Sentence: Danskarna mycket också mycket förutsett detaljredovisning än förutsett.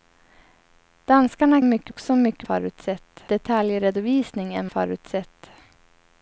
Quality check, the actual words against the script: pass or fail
pass